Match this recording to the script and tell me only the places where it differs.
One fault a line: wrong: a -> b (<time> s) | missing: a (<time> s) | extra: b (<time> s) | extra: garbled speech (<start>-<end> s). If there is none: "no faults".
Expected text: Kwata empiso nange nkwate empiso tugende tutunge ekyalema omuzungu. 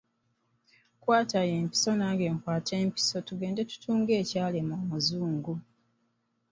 no faults